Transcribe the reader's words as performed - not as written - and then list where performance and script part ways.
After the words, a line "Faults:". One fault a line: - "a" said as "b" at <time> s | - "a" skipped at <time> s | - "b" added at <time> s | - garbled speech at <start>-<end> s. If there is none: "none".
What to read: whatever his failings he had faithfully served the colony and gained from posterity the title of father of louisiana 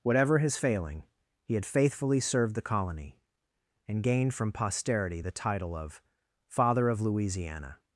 whatever his failing he had faithfully served the colony and gained from posterity the title of father of louisiana
Faults:
- "failings" said as "failing" at 0.5 s